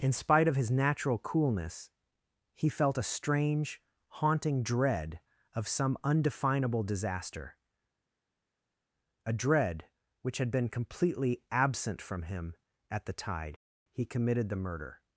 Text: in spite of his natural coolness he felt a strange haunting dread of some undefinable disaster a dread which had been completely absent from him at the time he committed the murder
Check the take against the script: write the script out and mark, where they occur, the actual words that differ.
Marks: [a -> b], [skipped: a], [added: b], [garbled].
in spite of his natural coolness he felt a strange haunting dread of some undefinable disaster a dread which had been completely absent from him at the [time -> tide] he committed the murder